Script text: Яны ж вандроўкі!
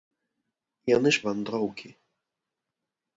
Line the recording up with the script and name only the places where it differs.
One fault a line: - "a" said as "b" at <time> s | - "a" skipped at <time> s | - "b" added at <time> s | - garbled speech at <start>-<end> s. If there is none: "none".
none